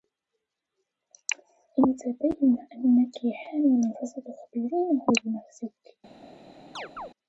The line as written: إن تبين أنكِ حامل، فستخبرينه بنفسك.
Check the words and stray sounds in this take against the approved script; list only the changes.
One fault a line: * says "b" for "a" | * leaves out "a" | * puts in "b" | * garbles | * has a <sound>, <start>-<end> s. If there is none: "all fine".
* has a chirp, 6.8-7.1 s